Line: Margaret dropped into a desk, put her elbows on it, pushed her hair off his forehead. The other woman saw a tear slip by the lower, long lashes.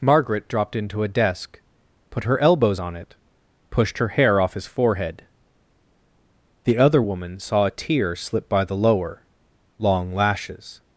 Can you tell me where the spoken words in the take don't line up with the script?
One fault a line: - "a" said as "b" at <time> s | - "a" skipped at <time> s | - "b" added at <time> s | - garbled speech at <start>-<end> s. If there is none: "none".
none